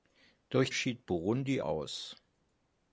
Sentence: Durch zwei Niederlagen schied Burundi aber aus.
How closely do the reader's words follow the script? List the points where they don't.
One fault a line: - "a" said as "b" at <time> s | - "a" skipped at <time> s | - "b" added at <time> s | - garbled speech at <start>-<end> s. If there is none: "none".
- "zwei Niederlagen" skipped at 0.7 s
- "aber" skipped at 1.6 s